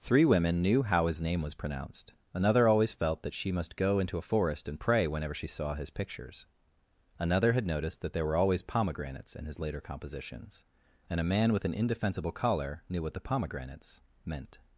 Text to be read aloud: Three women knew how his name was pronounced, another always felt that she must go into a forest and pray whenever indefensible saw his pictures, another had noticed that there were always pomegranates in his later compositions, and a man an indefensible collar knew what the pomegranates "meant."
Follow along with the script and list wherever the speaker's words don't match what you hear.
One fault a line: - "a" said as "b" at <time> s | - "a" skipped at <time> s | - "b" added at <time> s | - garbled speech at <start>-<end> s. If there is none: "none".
- "indefensible" said as "she" at 5.3 s
- "with" added at 11.5 s